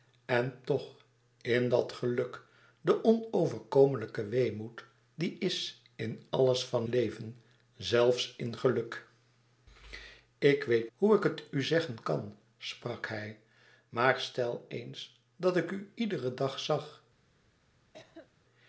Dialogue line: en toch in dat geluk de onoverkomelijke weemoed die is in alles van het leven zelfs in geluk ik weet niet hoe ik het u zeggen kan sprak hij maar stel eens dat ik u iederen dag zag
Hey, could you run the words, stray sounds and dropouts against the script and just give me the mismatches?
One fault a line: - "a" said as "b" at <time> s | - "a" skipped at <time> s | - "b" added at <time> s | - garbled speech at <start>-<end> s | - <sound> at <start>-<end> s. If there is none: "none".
- "het" skipped at 6.9 s
- "niet" skipped at 10.9 s
- cough at 17.9-18.3 s